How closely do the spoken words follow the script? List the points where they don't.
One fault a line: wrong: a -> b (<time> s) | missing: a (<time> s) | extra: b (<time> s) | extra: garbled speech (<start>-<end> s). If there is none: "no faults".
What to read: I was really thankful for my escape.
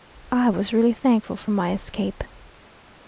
no faults